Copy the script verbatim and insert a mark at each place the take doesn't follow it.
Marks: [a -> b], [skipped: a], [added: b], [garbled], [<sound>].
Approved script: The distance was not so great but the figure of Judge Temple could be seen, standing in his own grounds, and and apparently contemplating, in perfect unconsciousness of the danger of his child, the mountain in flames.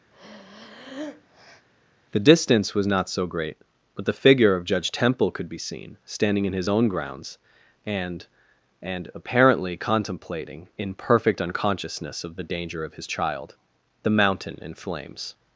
[breath] The distance was not so great but the figure of Judge Temple could be seen, standing in his own grounds, and and apparently contemplating, in perfect unconsciousness of the danger of his child, the mountain in flames.